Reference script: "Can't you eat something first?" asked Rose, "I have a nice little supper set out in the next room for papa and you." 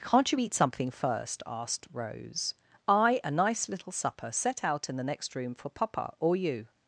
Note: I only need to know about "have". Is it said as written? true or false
false